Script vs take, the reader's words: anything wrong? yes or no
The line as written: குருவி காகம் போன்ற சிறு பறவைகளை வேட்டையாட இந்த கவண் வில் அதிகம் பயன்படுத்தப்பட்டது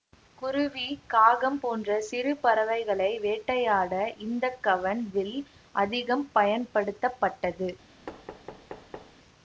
no